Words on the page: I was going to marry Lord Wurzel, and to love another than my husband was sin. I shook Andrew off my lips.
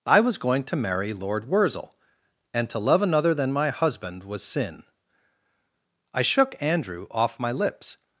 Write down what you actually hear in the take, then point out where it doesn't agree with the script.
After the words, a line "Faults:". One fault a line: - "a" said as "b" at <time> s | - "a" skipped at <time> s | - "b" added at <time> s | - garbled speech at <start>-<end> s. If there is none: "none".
I was going to marry Lord Wurzel, and to love another than my husband was sin. I shook Andrew off my lips.
Faults:
none